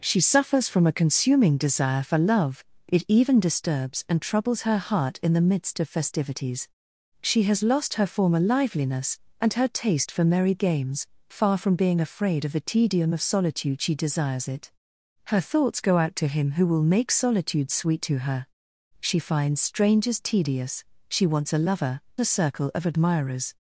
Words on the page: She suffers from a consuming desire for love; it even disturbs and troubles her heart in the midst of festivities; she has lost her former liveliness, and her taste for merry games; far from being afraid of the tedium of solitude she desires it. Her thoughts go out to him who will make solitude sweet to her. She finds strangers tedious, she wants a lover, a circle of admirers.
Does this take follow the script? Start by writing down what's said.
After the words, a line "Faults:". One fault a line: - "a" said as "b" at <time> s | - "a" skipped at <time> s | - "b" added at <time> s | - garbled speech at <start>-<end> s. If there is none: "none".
She suffers from a consuming desire for love; it even disturbs and troubles her heart in the midst of festivities; she has lost her former liveliness, and her taste for merry games; far from being afraid of the tedium of solitude she desires it. Her thoughts go out to him who will make solitude sweet to her. She finds strangers tedious, she wants a lover, a circle of admirers.
Faults:
none